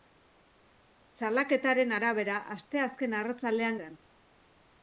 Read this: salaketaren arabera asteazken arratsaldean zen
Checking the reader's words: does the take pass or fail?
pass